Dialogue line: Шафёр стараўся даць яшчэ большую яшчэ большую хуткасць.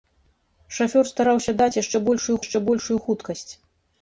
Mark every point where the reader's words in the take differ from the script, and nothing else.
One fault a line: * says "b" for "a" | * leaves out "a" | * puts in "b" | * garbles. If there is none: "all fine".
all fine